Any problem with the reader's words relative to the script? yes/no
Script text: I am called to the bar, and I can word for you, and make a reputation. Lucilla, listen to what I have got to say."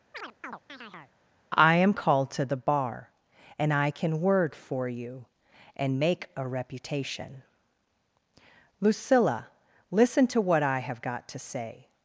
no